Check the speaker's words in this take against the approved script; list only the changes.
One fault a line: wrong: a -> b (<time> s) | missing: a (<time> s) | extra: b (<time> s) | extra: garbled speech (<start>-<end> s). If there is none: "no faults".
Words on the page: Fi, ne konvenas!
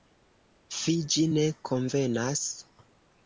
extra: ĝi (1.1 s)